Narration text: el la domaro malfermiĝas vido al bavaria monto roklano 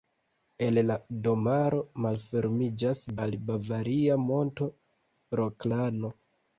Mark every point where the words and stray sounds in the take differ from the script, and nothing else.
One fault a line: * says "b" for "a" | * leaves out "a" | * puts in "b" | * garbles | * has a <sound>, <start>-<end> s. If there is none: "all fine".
* leaves out "vido"